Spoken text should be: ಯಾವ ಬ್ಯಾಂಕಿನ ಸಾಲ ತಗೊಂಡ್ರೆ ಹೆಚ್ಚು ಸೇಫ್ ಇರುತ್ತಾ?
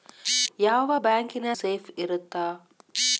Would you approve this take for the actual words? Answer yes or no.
no